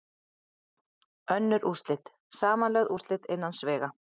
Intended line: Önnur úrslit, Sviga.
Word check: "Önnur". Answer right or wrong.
right